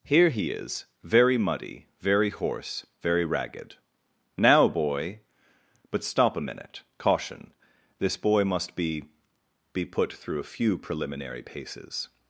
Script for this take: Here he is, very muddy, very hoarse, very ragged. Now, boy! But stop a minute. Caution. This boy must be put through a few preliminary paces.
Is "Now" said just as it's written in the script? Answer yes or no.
yes